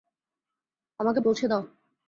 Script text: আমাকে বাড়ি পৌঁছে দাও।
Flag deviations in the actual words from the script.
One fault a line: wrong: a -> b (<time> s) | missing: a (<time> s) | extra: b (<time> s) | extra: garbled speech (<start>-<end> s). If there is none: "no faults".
missing: বাড়ি (1.2 s)